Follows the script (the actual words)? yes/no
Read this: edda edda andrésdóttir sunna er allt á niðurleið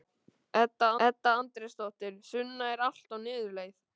yes